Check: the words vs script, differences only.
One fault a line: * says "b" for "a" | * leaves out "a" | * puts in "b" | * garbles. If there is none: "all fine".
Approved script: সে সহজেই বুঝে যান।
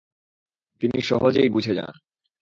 * says "তিনি" for "সে"